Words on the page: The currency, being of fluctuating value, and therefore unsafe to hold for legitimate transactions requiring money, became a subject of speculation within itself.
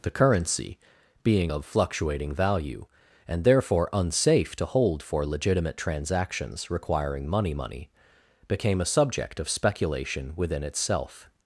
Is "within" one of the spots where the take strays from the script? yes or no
no